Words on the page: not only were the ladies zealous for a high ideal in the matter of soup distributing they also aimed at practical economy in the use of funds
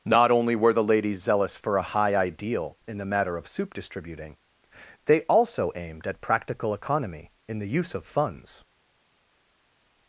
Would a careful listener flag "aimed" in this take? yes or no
no